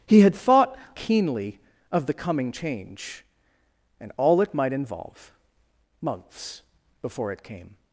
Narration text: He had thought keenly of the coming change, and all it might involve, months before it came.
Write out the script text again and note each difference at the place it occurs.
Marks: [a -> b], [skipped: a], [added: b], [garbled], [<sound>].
He had thought keenly of the coming change, and all it might involve, months before it came.